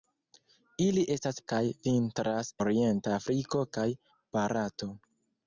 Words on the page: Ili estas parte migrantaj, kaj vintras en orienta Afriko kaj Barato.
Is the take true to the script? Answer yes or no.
no